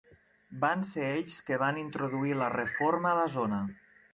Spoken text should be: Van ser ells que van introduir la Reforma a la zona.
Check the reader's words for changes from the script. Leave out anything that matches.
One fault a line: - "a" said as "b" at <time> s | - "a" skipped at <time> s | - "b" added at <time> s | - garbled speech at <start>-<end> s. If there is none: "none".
none